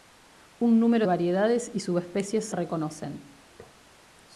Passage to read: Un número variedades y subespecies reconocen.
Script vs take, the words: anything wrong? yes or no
no